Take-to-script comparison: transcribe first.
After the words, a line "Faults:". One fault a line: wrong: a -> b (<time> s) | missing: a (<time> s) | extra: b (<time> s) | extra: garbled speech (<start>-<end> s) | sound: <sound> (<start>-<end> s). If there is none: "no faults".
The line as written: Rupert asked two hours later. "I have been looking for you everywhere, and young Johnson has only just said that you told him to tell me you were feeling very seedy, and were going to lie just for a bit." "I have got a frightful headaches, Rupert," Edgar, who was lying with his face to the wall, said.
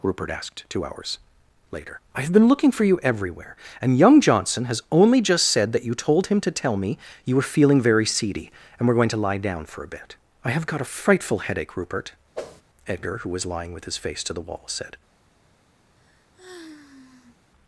Rupert asked two hours later. "I have been looking for you everywhere, and young Johnson has only just said that you told him to tell me you were feeling very seedy, and were going to lie down for a bit." "I have got a frightful headache, Rupert," Edgar, who was lying with his face to the wall, said.
Faults:
wrong: just -> down (9.4 s)
wrong: headaches -> headache (11.4 s)
sound: whoosh (12.3-12.6 s)
sound: sigh (16.0-17.4 s)